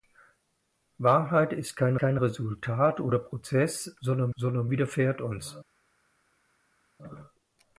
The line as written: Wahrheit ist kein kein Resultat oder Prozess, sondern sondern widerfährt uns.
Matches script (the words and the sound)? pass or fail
pass